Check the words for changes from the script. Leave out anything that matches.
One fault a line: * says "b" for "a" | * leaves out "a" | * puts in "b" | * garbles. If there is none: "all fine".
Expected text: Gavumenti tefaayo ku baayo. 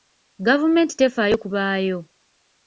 all fine